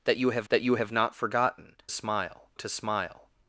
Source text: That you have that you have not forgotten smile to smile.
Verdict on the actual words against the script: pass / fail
pass